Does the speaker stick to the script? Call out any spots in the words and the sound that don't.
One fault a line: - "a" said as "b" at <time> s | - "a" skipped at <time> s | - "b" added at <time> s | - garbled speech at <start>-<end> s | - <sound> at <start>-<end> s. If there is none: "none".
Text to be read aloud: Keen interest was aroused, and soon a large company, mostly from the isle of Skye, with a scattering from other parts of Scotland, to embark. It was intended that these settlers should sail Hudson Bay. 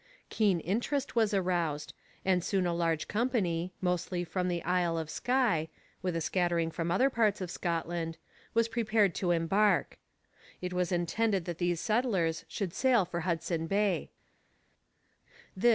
- "was prepared" added at 8.5 s
- "for" added at 13.1 s